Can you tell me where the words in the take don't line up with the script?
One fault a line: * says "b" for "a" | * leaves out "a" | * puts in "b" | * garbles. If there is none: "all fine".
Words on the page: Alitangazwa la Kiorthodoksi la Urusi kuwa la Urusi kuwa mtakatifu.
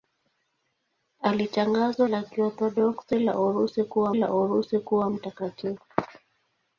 all fine